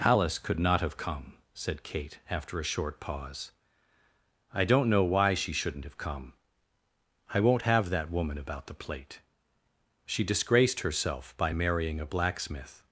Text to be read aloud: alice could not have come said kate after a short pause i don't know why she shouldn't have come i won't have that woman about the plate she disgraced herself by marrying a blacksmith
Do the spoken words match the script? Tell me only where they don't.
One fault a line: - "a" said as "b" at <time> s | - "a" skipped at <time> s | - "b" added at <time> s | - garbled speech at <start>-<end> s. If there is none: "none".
none